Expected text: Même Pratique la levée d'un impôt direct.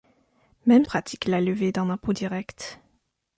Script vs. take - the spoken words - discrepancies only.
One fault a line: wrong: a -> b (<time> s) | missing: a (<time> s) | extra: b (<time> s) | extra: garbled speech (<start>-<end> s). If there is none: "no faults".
no faults